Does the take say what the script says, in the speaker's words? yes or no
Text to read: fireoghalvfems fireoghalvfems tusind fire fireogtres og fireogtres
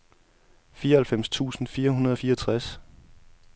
no